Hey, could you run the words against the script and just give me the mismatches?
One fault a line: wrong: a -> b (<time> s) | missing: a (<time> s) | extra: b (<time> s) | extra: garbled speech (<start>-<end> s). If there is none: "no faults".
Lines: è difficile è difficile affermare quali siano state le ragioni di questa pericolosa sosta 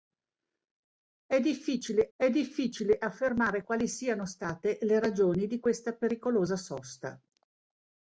no faults